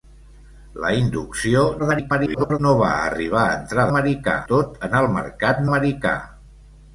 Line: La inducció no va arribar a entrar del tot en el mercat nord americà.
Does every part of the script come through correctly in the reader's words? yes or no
no